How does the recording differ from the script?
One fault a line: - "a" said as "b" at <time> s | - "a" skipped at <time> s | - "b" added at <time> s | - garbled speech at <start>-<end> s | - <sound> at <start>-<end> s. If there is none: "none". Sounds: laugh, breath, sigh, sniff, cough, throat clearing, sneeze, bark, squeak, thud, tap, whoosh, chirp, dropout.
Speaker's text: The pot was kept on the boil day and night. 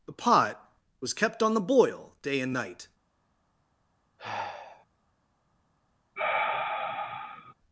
- sigh at 4.2-4.9 s
- sigh at 6.2-7.5 s